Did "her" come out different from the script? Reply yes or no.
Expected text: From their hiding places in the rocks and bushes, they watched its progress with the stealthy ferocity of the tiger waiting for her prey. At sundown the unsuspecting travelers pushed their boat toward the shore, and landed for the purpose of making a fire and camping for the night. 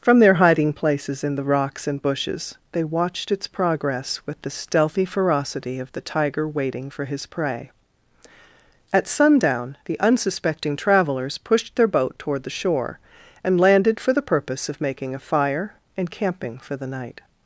yes